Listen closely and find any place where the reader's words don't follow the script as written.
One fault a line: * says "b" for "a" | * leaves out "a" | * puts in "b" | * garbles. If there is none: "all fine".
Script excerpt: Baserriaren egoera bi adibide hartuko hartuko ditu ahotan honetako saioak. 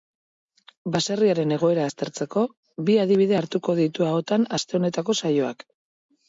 * puts in "aztertzeko"
* leaves out "hartuko"
* puts in "aste"